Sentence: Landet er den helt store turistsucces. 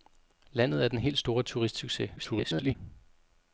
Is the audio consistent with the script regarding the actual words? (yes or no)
no